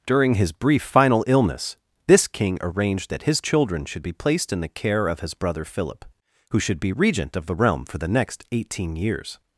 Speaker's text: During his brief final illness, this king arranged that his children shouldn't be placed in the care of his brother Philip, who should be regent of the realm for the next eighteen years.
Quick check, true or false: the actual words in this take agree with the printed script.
false